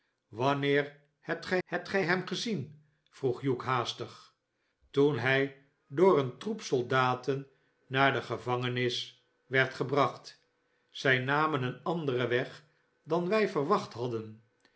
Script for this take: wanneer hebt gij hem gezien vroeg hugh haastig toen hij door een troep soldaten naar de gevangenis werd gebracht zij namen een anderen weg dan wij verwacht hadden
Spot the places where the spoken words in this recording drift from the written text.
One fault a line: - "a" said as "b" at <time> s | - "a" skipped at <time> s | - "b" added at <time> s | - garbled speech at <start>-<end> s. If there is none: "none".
- "hebt gij" added at 1.6 s